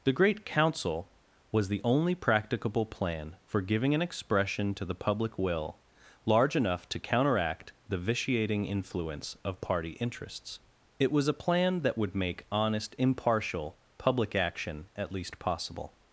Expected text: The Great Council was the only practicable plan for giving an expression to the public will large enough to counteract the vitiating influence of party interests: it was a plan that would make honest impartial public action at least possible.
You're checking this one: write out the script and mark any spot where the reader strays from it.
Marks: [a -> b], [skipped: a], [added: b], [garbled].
The Great Council was the only practicable plan for giving an expression to the public will large enough to counteract the vitiating influence of party interests: it was a plan that would make honest impartial public action at least possible.